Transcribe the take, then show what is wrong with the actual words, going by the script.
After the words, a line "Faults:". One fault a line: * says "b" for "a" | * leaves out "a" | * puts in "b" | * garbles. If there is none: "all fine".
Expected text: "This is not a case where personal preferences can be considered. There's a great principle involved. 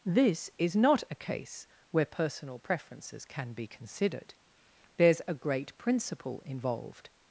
"This is not a case where personal preferences can be considered. There's a great principle involved.
Faults:
all fine